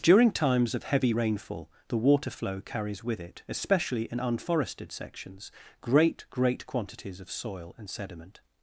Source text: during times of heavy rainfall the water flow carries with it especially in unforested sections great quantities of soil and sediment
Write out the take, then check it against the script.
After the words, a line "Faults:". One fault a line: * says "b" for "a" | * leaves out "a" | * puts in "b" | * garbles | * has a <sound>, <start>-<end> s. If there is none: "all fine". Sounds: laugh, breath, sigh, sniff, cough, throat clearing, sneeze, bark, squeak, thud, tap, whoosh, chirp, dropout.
during times of heavy rainfall the water flow carries with it especially in unforested sections great great quantities of soil and sediment
Faults:
* puts in "great"